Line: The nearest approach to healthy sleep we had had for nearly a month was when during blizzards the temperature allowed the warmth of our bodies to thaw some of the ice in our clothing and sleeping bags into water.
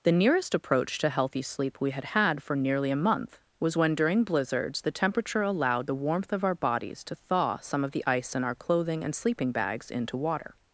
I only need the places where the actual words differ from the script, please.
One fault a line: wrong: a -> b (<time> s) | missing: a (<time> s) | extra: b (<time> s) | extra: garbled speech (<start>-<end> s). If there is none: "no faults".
no faults